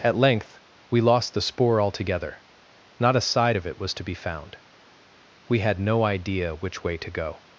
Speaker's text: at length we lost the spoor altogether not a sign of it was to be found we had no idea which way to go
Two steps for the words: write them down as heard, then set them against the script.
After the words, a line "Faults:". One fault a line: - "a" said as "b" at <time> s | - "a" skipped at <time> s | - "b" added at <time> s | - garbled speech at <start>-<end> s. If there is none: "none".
at length we lost the spoor altogether not a side of it was to be found we had no idea which way to go
Faults:
- "sign" said as "side" at 3.2 s